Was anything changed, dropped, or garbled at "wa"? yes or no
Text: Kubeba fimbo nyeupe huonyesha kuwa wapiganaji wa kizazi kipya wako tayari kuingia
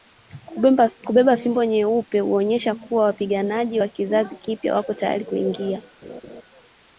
no